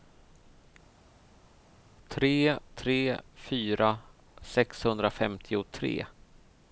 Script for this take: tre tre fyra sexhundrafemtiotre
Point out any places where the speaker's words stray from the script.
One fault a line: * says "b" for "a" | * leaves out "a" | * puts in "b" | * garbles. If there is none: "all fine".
all fine